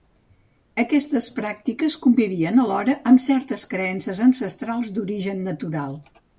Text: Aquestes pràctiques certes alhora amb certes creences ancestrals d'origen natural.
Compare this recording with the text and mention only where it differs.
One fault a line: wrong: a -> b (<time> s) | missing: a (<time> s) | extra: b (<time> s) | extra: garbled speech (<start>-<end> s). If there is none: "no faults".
wrong: certes -> convivien (2.1 s)